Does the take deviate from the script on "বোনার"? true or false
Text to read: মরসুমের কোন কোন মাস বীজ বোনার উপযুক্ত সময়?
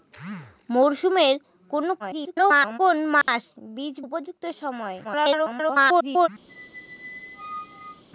true